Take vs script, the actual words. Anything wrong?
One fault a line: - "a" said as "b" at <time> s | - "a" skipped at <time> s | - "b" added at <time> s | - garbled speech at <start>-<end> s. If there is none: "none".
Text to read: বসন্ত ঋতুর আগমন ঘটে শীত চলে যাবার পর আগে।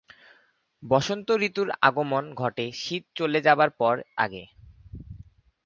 none